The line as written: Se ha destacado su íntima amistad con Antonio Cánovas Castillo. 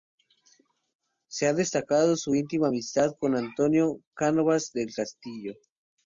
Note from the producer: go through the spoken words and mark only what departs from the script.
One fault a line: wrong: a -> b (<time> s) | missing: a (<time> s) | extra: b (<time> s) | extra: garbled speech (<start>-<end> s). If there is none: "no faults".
extra: del (4.7 s)